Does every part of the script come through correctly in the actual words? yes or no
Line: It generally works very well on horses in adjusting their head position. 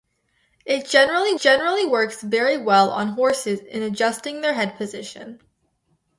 no